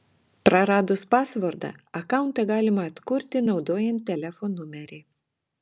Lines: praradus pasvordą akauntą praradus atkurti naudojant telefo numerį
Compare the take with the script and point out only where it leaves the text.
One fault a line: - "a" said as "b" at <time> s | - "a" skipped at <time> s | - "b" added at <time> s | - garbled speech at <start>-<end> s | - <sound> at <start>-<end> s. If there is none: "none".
- "praradus" said as "galima" at 2.5 s